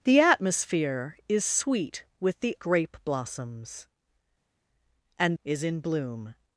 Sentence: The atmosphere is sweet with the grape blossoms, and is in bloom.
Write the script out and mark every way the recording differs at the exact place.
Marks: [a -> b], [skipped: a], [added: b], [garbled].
The atmosphere is sweet with the grape blossoms, and is in bloom.